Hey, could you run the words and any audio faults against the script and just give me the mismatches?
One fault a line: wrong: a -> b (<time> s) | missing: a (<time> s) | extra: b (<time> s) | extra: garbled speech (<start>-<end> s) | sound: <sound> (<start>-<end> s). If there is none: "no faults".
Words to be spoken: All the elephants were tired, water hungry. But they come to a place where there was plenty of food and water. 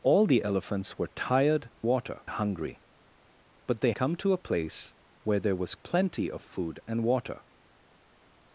no faults